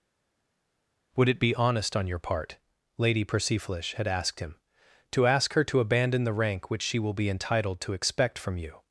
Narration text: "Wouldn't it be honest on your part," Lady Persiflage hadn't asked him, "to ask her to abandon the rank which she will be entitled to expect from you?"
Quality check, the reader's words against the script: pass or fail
fail